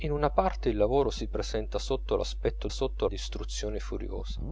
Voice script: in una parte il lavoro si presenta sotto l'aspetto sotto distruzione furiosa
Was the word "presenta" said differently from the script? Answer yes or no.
no